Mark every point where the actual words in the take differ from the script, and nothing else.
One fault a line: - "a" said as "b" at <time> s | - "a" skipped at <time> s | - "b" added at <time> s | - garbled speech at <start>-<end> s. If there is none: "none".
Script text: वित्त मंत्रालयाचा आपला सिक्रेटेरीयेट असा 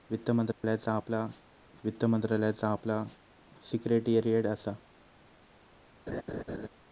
- "वित्त मंत्रालयाचा आपला" added at 1.8 s